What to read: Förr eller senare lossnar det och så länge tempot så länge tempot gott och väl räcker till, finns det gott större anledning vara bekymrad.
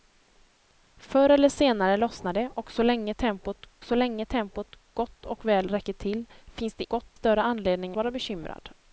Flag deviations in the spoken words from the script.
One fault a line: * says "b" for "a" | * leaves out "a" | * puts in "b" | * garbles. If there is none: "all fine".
all fine